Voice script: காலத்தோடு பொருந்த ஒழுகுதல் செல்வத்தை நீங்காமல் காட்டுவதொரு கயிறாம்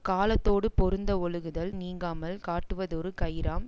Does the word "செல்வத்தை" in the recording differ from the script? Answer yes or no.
yes